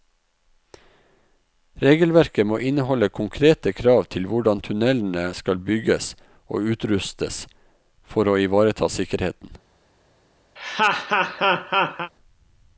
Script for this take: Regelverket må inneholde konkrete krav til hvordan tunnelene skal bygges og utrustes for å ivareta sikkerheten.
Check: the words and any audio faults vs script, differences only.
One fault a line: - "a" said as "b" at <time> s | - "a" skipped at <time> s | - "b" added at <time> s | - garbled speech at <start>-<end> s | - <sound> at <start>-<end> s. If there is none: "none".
- laugh at 10.6-12.1 s